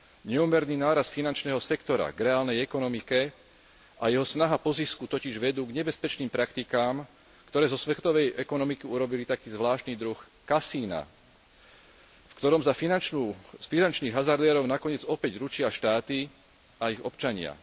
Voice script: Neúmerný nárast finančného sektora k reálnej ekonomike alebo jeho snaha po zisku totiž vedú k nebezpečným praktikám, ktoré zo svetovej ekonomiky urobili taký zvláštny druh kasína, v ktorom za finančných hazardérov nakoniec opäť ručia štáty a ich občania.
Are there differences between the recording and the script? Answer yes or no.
yes